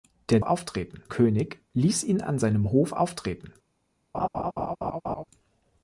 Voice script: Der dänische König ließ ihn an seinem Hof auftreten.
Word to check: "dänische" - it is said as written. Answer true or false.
false